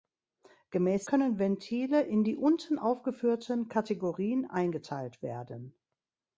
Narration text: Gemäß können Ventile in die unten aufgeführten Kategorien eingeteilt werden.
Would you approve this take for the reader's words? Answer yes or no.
yes